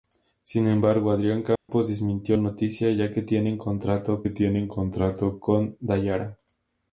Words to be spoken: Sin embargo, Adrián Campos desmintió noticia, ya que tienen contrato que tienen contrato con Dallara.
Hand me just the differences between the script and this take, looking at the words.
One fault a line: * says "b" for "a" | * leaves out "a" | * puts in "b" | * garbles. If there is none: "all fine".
all fine